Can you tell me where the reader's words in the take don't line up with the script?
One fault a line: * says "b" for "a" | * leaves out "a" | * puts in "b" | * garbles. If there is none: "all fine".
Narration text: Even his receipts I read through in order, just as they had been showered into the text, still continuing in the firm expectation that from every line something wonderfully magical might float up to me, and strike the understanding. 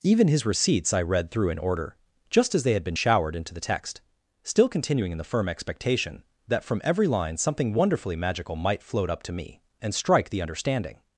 all fine